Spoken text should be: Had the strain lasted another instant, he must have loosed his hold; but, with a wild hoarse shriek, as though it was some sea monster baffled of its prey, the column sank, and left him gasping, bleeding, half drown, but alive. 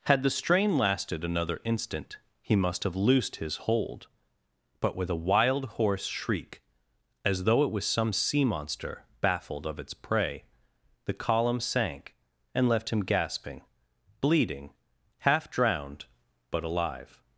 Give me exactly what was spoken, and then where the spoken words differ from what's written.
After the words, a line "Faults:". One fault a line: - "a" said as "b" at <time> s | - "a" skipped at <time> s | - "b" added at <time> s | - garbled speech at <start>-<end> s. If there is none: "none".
Had the strain lasted another instant, he must have loosed his hold; but, with a wild hoarse shriek, as though it was some sea monster baffled of its prey, the column sank, and left him gasping, bleeding, half drowned, but alive.
Faults:
- "drown" said as "drowned" at 15.5 s